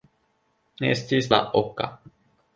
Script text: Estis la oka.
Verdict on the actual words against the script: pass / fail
pass